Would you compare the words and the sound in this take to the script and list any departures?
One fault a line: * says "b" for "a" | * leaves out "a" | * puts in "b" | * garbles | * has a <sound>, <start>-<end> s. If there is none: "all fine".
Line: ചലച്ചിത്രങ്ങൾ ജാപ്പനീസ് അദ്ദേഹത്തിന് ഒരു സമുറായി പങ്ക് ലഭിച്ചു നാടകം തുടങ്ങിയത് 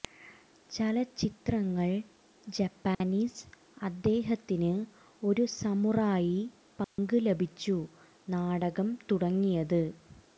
* has a dropout, 2.9-3.0 s
* has a dropout, 6.8-7.0 s